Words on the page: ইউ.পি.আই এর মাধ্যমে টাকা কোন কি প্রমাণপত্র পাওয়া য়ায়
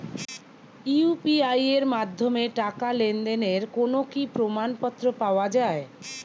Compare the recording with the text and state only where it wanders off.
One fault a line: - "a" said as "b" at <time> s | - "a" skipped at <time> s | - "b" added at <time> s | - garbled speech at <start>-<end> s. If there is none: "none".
- "লেনদেনের" added at 3.0 s